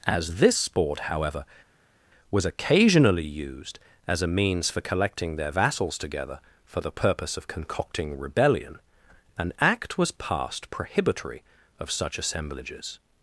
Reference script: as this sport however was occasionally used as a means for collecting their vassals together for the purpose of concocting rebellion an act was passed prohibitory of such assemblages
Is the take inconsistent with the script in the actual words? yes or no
no